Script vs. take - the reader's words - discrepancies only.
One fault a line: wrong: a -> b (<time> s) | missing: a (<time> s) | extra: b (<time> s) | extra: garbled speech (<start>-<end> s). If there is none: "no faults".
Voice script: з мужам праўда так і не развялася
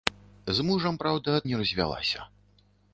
missing: так (1.4 s)